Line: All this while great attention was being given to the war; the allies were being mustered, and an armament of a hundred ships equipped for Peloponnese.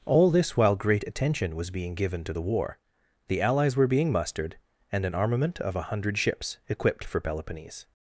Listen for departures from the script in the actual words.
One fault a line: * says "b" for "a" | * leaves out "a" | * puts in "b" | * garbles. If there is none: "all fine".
all fine